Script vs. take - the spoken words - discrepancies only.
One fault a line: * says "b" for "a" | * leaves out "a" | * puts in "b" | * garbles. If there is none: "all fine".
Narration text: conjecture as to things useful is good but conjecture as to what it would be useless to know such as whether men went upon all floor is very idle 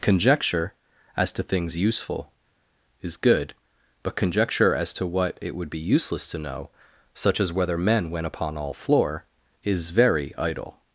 all fine